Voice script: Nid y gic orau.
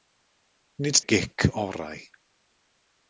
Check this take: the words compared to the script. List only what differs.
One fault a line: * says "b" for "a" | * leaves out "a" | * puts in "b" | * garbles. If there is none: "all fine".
all fine